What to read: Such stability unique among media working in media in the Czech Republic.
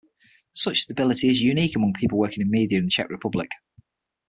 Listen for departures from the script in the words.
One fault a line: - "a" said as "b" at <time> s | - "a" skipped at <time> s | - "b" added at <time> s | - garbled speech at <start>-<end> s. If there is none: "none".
- "is" added at 1.3 s
- "media" said as "people" at 1.9 s